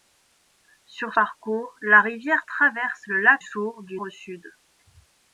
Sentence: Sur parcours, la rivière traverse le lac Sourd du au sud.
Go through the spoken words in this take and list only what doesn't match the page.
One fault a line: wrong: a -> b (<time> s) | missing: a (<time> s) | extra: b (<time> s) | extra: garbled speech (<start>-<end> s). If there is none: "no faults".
no faults